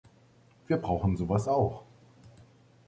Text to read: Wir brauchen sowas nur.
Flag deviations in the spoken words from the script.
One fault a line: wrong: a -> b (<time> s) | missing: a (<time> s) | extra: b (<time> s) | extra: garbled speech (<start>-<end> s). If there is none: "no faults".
wrong: nur -> auch (1.5 s)